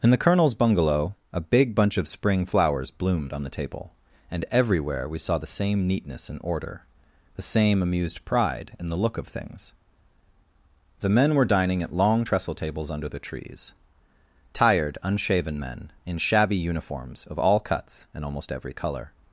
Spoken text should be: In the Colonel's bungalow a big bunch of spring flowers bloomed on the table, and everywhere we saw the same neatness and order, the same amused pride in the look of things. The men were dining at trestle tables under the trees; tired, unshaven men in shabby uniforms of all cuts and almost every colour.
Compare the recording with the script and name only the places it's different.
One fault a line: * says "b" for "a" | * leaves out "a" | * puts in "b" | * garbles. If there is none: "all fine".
* puts in "long"